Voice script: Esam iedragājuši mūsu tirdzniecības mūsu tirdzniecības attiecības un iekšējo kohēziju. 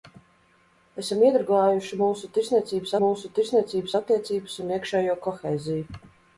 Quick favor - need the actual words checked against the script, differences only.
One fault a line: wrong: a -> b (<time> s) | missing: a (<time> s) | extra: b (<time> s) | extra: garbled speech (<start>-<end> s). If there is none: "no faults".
no faults